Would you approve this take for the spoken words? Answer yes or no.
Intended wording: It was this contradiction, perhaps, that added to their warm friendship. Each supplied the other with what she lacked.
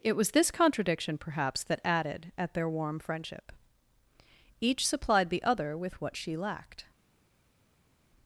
no